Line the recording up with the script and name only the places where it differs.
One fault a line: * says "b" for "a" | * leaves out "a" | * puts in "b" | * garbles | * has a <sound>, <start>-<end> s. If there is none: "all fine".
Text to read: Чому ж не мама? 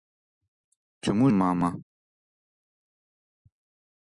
* leaves out "ж не"